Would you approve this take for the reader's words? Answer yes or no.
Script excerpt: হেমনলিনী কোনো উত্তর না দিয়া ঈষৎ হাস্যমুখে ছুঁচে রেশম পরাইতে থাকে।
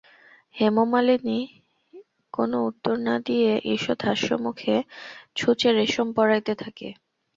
yes